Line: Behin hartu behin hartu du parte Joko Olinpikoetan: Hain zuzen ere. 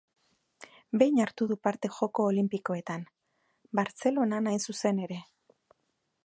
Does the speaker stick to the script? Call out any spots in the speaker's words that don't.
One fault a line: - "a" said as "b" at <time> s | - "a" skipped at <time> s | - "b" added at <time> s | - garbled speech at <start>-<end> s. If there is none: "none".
- "behin hartu" skipped at 1.5 s
- "Bartzelonan" added at 3.8 s